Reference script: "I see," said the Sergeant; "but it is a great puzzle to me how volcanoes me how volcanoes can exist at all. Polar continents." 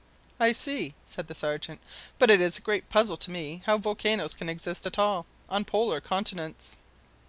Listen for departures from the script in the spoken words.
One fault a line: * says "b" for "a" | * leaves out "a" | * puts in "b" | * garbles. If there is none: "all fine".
* leaves out "me how volcanoes"
* puts in "on"